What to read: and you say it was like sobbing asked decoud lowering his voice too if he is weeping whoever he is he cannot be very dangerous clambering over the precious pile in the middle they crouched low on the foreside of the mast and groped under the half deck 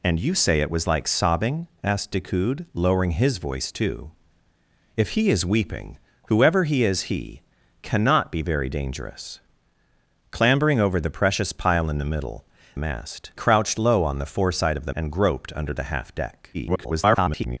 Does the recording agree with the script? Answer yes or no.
no